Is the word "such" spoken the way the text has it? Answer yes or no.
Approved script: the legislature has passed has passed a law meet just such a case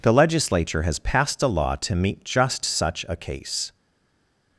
yes